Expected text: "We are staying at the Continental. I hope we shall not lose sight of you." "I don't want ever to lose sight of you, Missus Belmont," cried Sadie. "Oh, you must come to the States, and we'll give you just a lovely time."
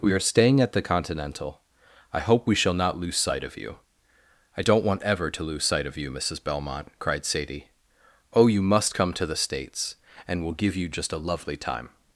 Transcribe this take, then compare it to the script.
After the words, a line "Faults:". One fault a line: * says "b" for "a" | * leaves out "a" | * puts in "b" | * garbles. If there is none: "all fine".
"We are staying at the Continental. I hope we shall not lose sight of you." "I don't want ever to lose sight of you, Missus Belmont," cried Sadie. "Oh, you must come to the States, and we'll give you just a lovely time."
Faults:
all fine